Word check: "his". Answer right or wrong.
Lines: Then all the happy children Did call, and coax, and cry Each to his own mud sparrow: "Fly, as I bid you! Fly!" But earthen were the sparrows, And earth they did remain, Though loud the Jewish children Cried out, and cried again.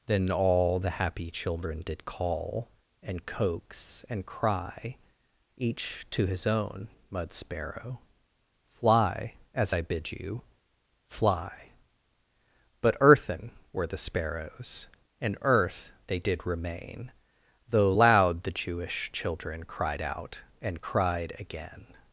right